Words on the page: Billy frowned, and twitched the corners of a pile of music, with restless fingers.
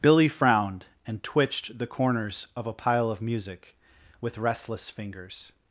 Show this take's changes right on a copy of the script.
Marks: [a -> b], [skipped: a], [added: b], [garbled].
Billy frowned, and twitched the corners of a pile of music, with restless fingers.